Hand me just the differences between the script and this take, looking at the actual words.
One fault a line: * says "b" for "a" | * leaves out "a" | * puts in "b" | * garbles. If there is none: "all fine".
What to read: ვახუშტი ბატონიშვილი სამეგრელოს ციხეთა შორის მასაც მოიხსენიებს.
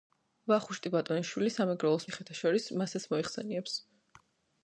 all fine